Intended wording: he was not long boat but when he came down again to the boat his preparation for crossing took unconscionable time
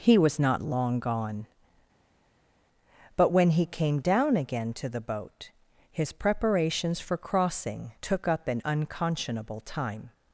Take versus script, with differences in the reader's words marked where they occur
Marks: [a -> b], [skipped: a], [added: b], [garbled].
he was not long [boat -> gone] but when he came down again to the boat his [preparation -> preparations] for crossing took [added: up an] unconscionable time